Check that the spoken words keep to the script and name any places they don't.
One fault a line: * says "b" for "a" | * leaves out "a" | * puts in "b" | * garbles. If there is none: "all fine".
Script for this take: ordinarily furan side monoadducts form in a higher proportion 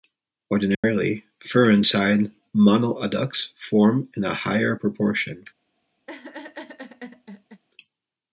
all fine